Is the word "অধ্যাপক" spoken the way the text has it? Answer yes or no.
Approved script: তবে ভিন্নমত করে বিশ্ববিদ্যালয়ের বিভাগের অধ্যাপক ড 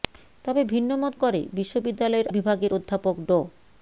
yes